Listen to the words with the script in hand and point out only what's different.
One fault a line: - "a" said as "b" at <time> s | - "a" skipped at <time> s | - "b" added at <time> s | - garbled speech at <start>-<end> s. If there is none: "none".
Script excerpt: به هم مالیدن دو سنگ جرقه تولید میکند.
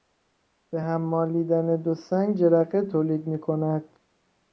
none